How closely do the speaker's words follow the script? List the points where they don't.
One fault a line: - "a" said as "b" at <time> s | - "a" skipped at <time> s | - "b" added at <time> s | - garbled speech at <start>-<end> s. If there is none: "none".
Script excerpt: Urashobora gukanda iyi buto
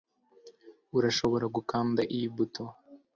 none